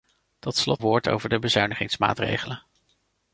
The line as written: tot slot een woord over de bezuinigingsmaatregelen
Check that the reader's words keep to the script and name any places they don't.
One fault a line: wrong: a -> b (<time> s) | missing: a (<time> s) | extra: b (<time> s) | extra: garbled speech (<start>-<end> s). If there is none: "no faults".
missing: een (0.8 s)